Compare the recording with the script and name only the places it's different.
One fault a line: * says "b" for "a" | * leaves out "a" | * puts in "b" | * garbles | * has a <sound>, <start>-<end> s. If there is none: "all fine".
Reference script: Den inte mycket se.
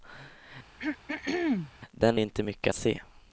* has a throat clearing, 0.8-1.7 s